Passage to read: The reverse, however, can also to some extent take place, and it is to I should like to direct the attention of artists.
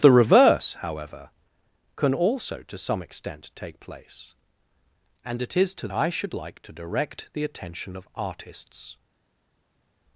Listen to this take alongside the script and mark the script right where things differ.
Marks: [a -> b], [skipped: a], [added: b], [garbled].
The reverse, however, can also to some extent take place, and it is to I should like to direct the attention of artists.